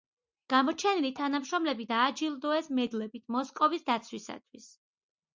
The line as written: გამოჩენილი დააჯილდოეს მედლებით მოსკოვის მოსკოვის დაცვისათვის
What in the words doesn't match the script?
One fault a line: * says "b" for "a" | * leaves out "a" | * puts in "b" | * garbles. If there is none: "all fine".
* puts in "თანამშრომლები"
* leaves out "მოსკოვის"